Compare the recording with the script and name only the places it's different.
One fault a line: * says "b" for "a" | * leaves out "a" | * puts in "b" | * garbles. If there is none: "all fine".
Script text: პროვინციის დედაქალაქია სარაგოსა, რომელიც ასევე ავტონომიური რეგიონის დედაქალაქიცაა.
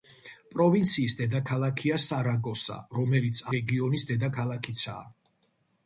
* leaves out "ასევე ავტონომიური"